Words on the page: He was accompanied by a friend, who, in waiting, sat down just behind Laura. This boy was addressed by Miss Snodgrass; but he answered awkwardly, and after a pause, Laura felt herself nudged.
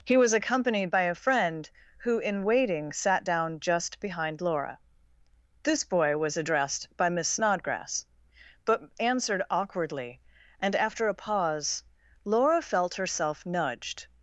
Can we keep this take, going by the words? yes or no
no